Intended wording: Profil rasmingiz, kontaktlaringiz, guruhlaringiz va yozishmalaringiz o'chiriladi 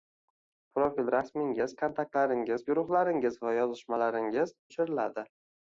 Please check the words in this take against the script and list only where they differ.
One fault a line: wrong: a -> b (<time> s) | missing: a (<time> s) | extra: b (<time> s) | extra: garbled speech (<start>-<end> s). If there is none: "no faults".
no faults